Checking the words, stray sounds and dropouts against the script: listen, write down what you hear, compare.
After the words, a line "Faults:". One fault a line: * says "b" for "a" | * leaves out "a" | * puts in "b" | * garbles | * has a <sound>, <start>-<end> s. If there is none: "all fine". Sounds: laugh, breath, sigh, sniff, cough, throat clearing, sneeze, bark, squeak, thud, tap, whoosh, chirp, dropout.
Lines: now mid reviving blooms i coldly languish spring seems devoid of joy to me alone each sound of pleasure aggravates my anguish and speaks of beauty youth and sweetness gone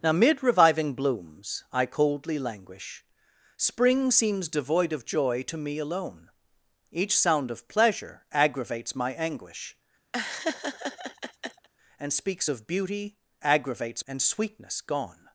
now mid reviving blooms i coldly languish spring seems devoid of joy to me alone each sound of pleasure aggravates my anguish and speaks of beauty aggravates and sweetness gone
Faults:
* has a laugh, 10.1-11.7 s
* says "aggravates" for "youth"